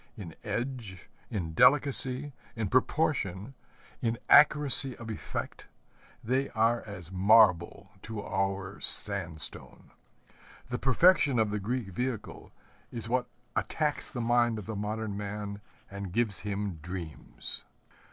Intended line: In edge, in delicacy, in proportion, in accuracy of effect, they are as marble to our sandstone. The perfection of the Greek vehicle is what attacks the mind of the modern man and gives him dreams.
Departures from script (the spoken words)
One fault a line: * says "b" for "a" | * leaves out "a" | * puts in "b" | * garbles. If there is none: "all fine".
all fine